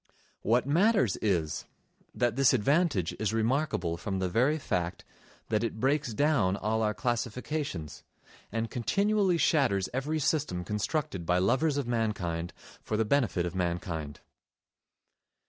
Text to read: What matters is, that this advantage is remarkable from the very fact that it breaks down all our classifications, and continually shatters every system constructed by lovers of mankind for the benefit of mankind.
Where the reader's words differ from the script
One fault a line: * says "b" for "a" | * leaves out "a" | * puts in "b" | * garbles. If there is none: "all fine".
all fine